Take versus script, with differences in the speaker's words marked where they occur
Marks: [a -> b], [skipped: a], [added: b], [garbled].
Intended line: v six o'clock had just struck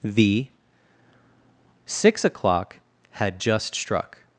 [v -> the] six o'clock had just struck